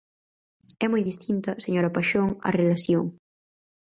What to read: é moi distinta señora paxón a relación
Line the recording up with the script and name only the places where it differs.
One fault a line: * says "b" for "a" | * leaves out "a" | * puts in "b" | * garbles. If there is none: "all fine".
all fine